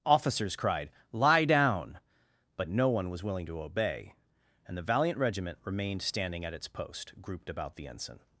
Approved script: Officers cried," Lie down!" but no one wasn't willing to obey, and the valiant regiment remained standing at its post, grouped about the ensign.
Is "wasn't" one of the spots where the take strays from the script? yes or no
yes